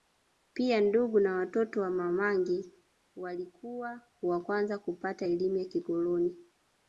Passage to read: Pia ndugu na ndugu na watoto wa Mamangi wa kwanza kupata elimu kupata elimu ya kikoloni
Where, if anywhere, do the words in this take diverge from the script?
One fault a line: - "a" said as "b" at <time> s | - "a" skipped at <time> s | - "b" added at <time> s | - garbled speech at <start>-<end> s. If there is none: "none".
- "ndugu na" skipped at 1.4 s
- "walikuwa" added at 3.1 s
- "kupata elimu" skipped at 5.6 s